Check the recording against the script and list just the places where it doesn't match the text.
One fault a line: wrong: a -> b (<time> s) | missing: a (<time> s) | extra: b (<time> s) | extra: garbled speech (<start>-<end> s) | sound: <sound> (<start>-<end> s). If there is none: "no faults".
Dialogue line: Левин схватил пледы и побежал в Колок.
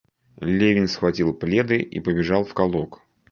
no faults